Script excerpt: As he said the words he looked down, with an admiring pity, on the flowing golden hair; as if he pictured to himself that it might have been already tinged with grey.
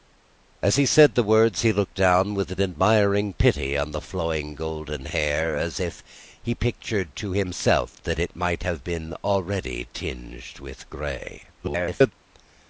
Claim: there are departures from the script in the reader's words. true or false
true